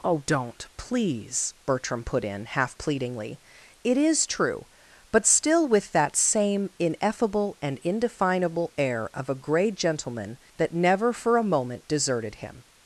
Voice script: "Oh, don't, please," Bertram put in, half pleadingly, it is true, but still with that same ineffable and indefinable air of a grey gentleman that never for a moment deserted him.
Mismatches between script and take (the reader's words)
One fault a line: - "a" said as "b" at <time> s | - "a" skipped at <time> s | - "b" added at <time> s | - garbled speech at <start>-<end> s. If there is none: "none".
none